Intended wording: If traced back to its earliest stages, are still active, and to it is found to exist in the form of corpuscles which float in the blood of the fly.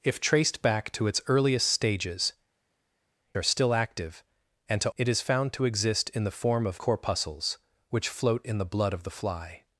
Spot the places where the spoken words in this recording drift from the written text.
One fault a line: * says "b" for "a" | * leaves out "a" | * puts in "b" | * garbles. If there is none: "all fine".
all fine